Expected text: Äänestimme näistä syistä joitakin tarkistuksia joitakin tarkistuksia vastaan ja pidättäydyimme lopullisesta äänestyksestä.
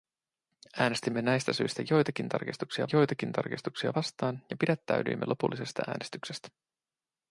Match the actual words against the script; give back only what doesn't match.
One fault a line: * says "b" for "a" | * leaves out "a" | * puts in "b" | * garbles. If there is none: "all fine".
all fine